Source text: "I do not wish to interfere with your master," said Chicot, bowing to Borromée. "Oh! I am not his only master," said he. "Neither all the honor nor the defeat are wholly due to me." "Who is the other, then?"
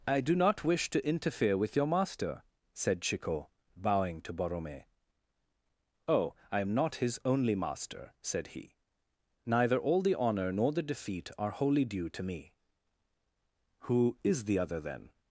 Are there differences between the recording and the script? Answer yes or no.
no